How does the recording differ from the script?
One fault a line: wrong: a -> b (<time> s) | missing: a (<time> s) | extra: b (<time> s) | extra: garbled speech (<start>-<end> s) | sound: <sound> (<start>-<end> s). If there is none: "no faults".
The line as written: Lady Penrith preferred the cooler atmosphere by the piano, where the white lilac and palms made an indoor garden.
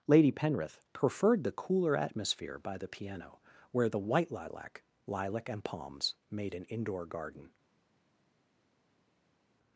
extra: lilac (5.0 s)